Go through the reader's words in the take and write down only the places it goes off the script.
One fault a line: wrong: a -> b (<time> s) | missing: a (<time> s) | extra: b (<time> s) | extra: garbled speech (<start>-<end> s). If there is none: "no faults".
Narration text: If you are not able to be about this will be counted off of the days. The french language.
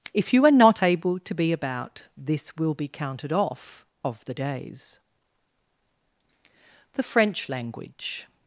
no faults